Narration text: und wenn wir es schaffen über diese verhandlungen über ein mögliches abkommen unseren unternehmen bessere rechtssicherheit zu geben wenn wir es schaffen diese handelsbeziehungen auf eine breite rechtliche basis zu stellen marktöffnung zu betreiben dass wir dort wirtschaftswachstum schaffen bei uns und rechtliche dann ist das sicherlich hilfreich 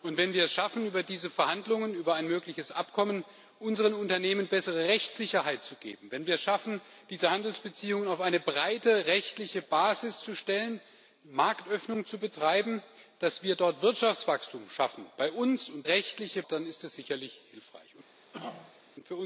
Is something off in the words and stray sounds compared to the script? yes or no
yes